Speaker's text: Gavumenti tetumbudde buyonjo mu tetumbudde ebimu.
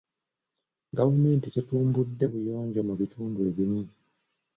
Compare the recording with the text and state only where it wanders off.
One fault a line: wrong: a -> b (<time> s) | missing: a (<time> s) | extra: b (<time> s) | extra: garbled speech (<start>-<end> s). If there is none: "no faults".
wrong: tetumbudde -> bitundu (3.0 s)